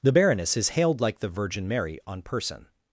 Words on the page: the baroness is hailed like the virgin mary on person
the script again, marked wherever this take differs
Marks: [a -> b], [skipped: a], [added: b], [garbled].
the baroness is hailed like the virgin mary on person